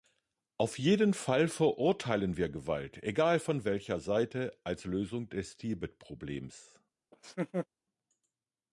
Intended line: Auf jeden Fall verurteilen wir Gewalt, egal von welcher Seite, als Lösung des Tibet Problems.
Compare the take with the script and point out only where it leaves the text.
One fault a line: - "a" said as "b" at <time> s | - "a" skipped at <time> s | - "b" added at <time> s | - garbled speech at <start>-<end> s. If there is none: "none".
none